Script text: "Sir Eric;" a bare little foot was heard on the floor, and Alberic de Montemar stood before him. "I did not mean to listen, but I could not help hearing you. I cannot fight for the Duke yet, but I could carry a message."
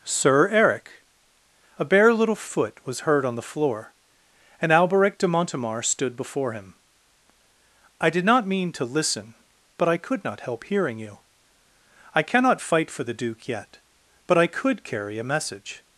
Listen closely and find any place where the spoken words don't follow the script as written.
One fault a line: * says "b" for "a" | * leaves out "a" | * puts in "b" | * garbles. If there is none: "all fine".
all fine